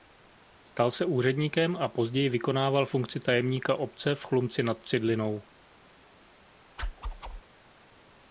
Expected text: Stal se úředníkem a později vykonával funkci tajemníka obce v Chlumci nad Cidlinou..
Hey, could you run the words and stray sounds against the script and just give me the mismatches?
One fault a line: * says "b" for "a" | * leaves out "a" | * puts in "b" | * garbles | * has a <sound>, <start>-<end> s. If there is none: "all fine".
* has a whoosh, 6.8-7.4 s